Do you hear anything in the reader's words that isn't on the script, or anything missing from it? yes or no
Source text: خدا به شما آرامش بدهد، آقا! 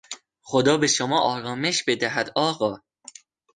no